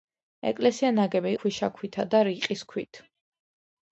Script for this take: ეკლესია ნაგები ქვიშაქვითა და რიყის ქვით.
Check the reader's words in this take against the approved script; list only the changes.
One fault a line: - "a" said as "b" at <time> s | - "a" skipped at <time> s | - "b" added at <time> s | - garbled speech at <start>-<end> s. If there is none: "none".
none